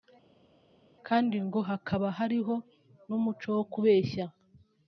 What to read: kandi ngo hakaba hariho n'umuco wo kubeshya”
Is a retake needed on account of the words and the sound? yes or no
no